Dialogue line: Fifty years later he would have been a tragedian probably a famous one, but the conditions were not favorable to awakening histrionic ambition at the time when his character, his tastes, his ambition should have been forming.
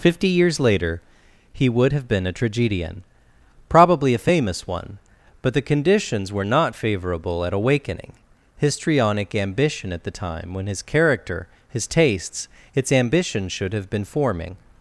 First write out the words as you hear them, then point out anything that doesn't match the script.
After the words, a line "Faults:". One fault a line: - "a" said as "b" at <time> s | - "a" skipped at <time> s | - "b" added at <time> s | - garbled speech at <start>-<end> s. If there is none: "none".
Fifty years later he would have been a tragedian probably a famous one, but the conditions were not favorable at awakening histrionic ambition at the time when his character, his tastes, its ambition should have been forming.
Faults:
- "to" said as "at" at 7.4 s
- "his" said as "its" at 12.7 s